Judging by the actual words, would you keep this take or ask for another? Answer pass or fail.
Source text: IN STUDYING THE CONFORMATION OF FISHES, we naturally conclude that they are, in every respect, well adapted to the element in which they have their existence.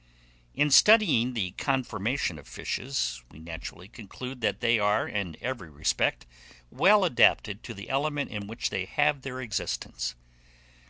pass